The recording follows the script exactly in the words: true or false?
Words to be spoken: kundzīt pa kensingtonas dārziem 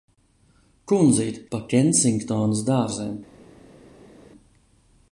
true